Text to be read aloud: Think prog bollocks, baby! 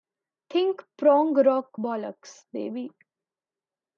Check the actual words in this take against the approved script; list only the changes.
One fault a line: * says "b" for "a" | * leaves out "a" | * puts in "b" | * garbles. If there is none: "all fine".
* puts in "rock"